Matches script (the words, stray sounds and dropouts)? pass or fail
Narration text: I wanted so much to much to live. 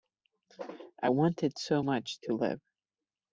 fail